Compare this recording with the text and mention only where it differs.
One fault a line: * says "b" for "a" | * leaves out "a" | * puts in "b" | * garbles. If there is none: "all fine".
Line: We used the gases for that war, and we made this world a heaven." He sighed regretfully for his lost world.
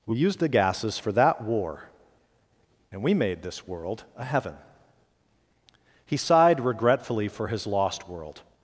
all fine